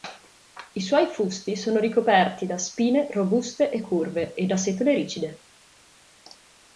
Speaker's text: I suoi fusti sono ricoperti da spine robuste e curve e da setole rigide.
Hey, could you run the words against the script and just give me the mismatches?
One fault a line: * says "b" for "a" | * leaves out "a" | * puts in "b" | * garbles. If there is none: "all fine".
all fine